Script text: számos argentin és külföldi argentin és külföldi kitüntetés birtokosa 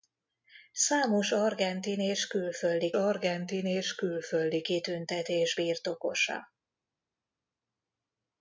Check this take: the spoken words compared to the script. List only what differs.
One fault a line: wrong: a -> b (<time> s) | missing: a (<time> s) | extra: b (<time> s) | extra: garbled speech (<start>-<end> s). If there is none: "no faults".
no faults